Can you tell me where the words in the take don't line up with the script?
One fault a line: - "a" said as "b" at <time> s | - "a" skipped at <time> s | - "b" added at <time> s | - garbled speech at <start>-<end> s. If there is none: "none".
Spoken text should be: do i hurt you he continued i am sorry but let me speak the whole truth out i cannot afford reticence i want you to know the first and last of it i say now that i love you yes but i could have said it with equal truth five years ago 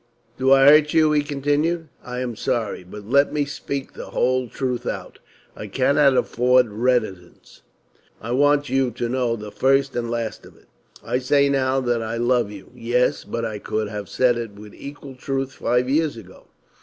none